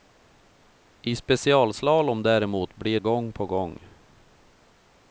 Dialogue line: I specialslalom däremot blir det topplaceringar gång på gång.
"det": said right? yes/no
no